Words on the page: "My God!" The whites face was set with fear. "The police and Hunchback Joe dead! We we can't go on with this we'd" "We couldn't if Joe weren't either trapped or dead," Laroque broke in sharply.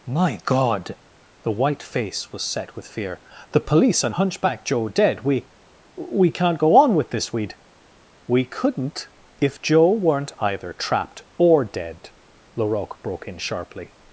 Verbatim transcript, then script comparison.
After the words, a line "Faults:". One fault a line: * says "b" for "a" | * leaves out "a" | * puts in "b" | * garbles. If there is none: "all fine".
"My God!" The white face was set with fear. "The police and Hunchback Joe dead! We we can't go on with this we'd" "We couldn't if Joe weren't either trapped or dead," Laroque broke in sharply.
Faults:
* says "white" for "whites"